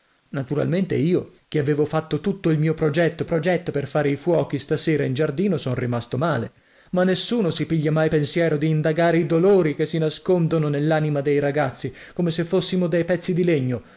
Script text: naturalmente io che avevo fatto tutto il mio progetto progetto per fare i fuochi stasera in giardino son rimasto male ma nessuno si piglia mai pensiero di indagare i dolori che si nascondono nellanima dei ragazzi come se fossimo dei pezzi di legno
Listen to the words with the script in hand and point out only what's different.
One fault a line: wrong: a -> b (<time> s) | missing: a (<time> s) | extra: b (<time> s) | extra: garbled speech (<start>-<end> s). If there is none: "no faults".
no faults